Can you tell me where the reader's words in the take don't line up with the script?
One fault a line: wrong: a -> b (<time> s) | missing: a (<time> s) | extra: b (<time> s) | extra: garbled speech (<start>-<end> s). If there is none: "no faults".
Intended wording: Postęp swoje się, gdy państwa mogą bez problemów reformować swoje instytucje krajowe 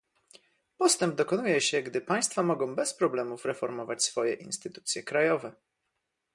wrong: swoje -> dokonuje (1.1 s)